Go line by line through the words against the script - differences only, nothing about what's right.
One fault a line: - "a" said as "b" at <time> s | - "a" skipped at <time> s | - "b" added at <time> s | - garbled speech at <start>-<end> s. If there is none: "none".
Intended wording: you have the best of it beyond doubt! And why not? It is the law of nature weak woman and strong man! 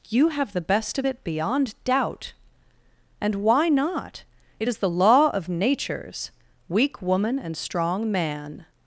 - "nature" said as "natures" at 5.5 s